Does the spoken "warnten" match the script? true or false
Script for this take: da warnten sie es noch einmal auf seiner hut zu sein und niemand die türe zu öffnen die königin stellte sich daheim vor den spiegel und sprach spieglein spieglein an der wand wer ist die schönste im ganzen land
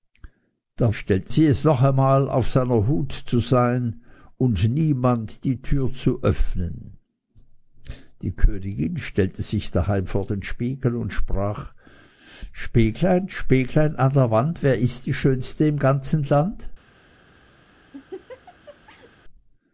false